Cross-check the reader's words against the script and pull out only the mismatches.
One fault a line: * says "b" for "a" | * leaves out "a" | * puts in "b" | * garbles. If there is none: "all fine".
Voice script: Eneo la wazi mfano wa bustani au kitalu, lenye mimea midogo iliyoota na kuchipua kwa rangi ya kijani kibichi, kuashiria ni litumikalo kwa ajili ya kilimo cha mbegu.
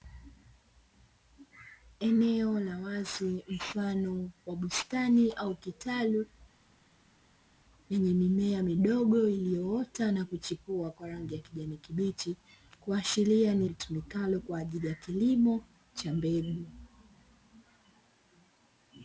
all fine